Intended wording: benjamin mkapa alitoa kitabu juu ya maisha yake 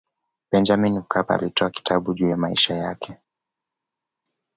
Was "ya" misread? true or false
false